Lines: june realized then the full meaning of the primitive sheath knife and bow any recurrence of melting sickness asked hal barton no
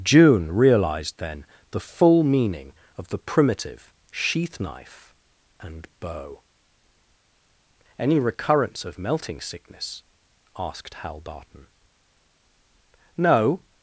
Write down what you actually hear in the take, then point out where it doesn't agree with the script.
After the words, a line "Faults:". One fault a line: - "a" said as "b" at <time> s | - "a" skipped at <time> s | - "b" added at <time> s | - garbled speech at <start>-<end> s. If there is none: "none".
june realized then the full meaning of the primitive sheath knife and bow any recurrence of melting sickness asked hal barton no
Faults:
none